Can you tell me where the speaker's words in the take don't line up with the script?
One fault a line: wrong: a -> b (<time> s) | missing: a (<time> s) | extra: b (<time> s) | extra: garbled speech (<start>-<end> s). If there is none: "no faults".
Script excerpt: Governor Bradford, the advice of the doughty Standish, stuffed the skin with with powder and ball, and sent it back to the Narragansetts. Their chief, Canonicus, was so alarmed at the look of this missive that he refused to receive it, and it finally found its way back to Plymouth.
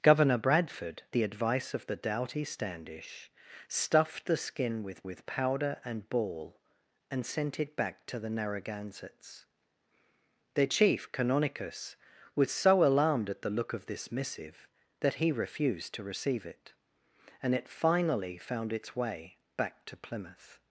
no faults